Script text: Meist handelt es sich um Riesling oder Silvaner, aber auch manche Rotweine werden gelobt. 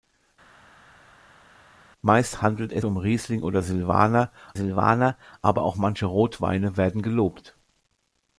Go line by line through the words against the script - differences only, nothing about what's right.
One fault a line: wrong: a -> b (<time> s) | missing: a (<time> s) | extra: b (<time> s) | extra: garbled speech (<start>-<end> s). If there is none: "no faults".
missing: sich (2.8 s)
extra: Silvaner (4.5 s)